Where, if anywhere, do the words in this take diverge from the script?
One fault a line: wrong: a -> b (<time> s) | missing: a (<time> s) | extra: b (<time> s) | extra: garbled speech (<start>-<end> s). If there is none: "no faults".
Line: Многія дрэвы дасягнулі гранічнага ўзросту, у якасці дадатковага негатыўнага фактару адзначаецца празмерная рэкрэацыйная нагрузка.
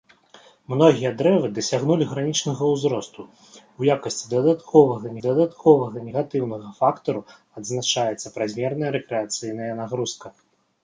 extra: дадатковага (5.3 s)